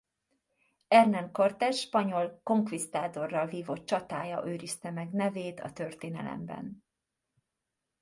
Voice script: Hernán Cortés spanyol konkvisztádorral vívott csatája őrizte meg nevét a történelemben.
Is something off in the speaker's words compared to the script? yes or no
no